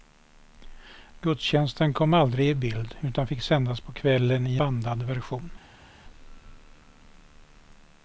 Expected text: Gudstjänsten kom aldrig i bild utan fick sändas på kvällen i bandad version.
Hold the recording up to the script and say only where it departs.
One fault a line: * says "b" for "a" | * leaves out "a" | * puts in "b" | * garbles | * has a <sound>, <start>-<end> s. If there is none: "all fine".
all fine